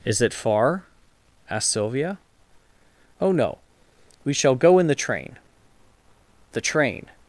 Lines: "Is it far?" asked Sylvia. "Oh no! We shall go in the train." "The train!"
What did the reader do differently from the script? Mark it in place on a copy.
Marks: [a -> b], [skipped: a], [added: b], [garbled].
"Is it far?" asked Sylvia. "Oh no! We shall go in the train." "The train!"